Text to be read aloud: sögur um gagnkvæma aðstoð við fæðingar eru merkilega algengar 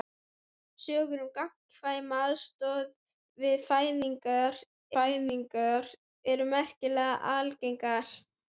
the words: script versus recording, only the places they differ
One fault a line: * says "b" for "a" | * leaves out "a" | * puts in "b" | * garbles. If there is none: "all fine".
* puts in "fæðingar"